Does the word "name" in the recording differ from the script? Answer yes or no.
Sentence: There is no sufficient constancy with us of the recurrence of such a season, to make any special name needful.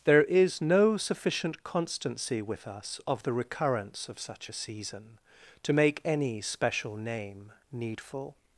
no